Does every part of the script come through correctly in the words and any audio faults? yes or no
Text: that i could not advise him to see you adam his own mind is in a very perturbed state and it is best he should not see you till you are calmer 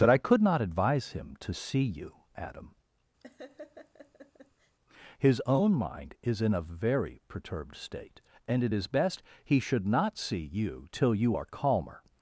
no